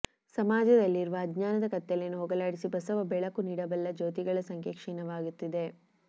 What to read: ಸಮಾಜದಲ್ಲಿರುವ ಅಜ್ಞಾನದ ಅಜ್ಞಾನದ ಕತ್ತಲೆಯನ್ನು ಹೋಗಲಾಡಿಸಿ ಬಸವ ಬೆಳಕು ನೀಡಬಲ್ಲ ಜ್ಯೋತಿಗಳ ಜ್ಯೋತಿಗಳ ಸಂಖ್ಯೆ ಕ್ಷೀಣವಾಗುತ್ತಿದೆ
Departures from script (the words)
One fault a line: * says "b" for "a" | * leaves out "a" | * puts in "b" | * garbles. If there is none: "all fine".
* leaves out "ಅಜ್ಞಾನದ"
* leaves out "ಜ್ಯೋತಿಗಳ"